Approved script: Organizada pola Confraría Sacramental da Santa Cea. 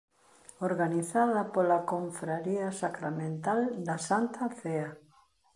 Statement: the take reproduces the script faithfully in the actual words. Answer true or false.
true